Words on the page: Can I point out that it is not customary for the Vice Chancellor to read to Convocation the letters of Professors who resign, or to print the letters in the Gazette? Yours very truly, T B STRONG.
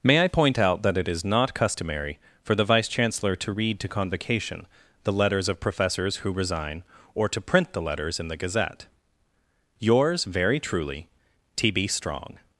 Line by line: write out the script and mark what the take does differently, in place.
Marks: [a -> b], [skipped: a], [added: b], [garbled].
[Can -> May] I point out that it is not customary for the Vice Chancellor to read to Convocation the letters of Professors who resign, or to print the letters in the Gazette? Yours very truly, T B STRONG.